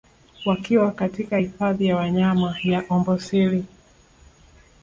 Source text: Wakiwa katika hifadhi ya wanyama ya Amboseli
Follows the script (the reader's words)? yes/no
yes